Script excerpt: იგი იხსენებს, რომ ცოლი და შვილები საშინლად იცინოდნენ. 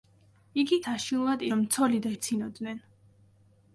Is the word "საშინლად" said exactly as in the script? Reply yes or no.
no